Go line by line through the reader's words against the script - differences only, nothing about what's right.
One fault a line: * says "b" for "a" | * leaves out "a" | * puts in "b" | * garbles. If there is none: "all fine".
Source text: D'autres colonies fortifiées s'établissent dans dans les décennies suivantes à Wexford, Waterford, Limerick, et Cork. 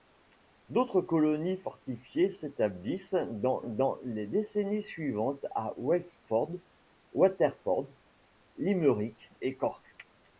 all fine